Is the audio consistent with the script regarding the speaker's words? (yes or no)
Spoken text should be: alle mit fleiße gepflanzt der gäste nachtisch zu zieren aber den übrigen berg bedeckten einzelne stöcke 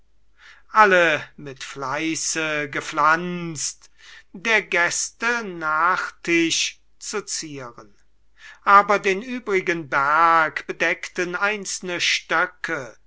yes